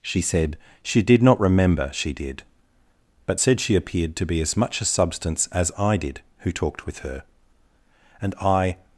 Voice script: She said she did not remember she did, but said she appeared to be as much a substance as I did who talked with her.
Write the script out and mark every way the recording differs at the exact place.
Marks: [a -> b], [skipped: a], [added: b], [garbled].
She said she did not remember she did, but said she appeared to be as much a substance as I did who talked with her. [added: And I]